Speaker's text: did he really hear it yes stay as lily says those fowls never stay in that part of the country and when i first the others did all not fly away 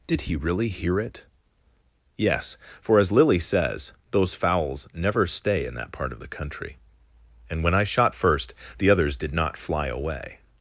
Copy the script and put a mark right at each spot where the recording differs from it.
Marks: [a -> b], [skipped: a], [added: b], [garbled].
did he really hear it yes [stay -> for] as lily says those fowls never stay in that part of the country and when i [added: shot] first the others did [skipped: all] not fly away